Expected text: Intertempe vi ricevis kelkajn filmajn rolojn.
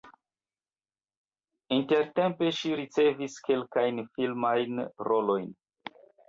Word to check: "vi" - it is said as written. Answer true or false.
false